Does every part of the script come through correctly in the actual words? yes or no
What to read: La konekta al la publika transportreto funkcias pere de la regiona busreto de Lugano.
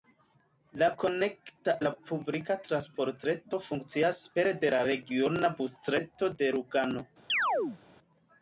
no